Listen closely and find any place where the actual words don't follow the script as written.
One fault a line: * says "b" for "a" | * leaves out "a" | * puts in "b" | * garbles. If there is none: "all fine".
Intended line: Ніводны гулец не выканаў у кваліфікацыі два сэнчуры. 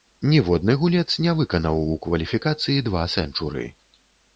all fine